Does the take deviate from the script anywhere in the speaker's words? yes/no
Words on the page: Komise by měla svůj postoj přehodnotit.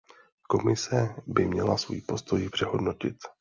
no